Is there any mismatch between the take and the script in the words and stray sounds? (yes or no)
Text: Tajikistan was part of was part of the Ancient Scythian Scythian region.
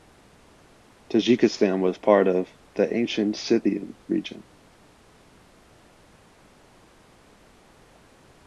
yes